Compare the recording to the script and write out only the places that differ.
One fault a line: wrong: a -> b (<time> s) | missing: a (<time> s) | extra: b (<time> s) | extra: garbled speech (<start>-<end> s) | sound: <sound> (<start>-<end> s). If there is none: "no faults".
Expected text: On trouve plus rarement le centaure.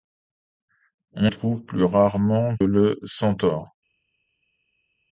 no faults